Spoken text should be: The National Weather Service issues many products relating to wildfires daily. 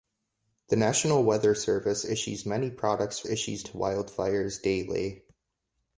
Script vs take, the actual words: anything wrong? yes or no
yes